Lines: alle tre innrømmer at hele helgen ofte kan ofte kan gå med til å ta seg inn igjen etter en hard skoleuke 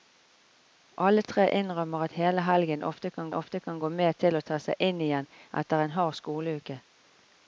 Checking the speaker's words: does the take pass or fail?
pass